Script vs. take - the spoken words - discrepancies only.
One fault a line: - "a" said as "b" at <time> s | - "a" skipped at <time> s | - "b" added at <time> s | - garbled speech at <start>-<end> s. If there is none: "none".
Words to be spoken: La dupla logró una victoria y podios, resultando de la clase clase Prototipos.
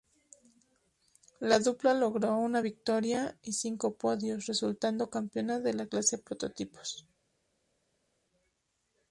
- "cinco" added at 3.5 s
- "campeona" added at 5.1 s
- "clase" skipped at 6.2 s